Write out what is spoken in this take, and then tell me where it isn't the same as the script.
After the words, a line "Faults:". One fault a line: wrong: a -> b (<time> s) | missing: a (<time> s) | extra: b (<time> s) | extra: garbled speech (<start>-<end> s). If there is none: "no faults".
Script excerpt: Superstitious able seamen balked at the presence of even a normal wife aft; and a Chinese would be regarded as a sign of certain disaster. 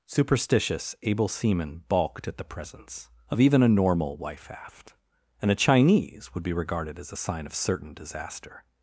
Superstitious able seamen balked at the presence of even a normal wife aft; and a Chinese would be regarded as a sign of certain disaster.
Faults:
no faults